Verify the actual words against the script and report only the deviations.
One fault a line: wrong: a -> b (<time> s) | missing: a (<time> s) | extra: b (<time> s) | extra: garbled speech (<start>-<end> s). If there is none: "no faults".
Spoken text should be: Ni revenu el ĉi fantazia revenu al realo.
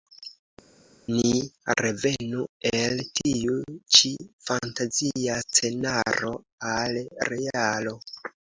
extra: tiu (3.2 s)
wrong: revenu -> scenaro (5.4 s)